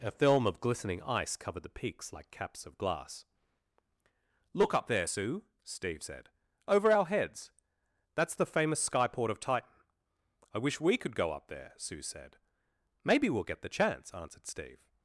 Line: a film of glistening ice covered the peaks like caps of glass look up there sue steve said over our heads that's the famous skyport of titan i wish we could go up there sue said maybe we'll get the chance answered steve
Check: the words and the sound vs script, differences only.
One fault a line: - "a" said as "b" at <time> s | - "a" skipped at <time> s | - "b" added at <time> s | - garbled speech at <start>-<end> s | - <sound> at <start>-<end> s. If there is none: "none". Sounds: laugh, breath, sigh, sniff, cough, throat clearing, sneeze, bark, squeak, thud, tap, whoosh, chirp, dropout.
none